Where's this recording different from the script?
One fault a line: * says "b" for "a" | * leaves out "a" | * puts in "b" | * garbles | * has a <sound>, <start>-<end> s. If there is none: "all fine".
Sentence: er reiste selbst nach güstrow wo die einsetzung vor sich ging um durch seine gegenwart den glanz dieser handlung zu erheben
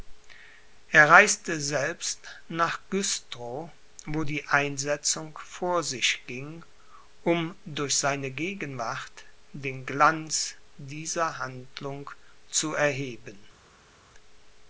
all fine